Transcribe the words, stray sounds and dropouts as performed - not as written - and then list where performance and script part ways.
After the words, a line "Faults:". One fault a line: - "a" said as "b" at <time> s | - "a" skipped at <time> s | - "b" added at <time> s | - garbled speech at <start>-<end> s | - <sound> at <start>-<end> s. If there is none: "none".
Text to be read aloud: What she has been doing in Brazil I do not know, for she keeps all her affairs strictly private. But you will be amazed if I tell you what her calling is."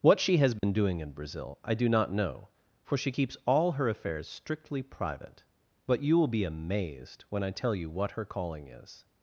What she has been doing in Brazil I do not know, for she keeps all her affairs strictly private. But you will be amazed when I tell you what her calling is."
Faults:
- dropout at 0.6-0.6 s
- "if" said as "when" at 7.3 s